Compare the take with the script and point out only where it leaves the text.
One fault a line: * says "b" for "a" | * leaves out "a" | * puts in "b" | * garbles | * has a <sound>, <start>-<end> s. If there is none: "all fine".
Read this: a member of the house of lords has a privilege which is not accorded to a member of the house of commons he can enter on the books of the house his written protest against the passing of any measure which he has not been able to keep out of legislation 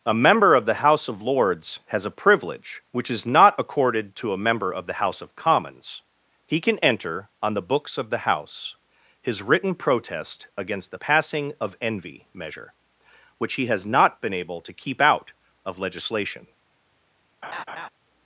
* says "envy" for "any"
* has a laugh, 17.4-17.9 s